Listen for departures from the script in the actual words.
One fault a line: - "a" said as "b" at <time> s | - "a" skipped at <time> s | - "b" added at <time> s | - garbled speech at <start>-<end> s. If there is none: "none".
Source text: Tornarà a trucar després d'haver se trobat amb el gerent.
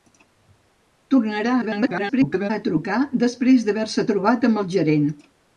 - garbled speech at 1.6-2.5 s